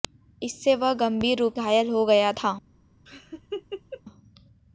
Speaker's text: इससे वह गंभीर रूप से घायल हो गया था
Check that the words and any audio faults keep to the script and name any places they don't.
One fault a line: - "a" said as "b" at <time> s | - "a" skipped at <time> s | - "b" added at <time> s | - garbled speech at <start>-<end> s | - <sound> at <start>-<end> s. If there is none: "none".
- "से" skipped at 1.6 s
- laugh at 3.1-4.0 s